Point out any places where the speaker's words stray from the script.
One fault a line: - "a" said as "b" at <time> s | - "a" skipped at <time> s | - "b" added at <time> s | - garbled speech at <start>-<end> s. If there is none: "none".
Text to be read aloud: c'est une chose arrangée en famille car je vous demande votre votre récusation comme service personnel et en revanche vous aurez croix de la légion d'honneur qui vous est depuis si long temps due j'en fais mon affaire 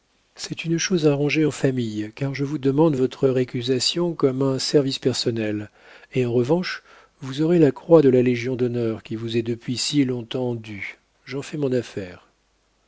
- "votre" skipped at 3.3 s
- "un" added at 4.4 s
- "la" added at 7.6 s